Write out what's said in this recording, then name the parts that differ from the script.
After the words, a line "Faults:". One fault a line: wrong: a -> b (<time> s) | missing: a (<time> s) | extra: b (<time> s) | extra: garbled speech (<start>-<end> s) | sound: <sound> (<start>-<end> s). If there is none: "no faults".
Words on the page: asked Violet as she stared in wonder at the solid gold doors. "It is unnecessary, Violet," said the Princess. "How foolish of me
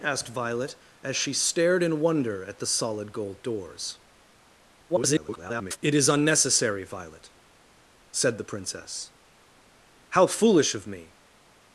asked Violet as she stared in wonder at the solid gold doors. [garbled] "It is unnecessary, Violet," said the Princess. "How foolish of me
Faults:
extra: garbled speech (4.9-5.8 s)